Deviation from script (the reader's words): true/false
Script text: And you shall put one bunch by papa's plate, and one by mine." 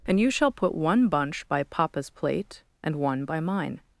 false